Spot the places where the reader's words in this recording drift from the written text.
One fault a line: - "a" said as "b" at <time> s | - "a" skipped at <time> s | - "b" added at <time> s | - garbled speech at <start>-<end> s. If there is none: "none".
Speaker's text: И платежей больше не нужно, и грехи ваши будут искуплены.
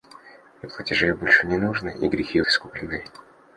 - "ваши будут" skipped at 2.4 s